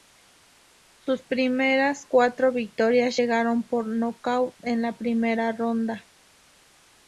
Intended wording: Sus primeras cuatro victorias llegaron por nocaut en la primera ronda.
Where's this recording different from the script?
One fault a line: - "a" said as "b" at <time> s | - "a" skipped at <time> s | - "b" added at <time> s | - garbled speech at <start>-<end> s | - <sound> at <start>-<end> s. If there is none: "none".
none